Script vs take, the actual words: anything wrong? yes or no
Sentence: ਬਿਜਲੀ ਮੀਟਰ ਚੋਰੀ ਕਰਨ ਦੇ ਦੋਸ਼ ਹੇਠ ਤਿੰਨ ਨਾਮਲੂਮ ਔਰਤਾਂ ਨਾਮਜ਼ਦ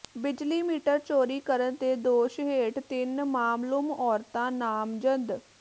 no